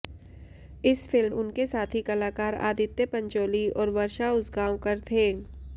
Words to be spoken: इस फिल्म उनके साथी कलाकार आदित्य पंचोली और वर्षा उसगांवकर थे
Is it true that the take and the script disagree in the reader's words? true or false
false